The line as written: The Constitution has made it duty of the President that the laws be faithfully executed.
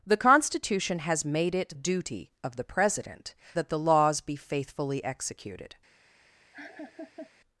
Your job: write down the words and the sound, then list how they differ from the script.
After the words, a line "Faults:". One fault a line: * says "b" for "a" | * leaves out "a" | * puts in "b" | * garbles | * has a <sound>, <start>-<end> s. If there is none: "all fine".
The Constitution has made it duty of the President that the laws be faithfully executed.
Faults:
* has a laugh, 6.5-7.3 s